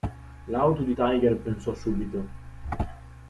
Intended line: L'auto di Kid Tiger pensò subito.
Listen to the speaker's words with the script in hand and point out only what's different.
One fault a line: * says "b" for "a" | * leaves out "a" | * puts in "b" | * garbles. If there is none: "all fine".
* leaves out "Kid"